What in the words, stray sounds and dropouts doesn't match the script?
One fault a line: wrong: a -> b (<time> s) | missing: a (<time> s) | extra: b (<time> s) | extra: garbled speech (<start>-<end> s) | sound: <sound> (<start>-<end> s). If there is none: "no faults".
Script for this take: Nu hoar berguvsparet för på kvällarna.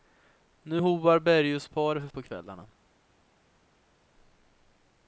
no faults